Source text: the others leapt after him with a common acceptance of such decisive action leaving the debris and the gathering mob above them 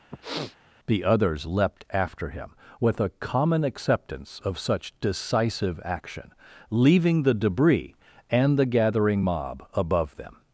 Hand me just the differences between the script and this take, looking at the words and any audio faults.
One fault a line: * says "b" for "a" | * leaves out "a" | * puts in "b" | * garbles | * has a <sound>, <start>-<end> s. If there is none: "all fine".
* has a sniff, 0.1-0.6 s